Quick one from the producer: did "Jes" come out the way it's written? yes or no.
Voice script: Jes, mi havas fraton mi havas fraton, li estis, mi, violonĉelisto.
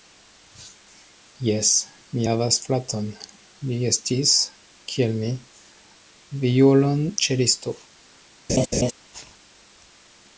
yes